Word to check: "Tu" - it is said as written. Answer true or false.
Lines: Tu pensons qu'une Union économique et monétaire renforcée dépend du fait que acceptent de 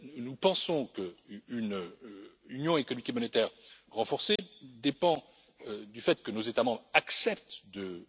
false